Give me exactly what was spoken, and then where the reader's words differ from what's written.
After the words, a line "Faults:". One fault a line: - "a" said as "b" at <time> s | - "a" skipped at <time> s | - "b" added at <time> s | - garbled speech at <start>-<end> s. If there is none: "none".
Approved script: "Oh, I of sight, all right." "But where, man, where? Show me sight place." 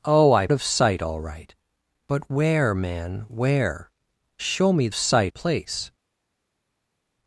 "Oh, I of sight, all right." "But where, man, where? Show me sight place."
Faults:
none